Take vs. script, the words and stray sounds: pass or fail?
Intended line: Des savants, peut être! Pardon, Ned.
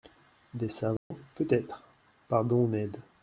fail